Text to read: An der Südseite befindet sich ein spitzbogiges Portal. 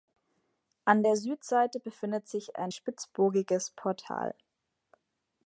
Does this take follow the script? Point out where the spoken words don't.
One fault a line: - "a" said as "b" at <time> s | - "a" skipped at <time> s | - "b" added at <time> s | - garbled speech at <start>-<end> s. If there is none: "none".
none